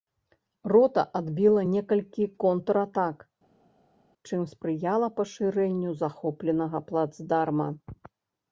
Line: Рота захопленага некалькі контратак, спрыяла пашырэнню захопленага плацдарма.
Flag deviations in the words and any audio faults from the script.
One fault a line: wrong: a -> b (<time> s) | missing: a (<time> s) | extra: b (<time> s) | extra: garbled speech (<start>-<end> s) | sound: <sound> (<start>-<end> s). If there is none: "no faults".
wrong: захопленага -> адбіла (1.2 s)
extra: чым (4.3 s)